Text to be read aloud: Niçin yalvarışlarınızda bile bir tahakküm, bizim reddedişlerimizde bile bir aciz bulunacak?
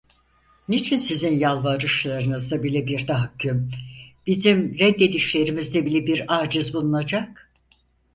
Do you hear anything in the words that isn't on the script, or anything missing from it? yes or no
yes